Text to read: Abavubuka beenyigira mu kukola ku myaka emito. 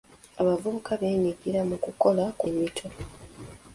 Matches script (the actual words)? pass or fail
fail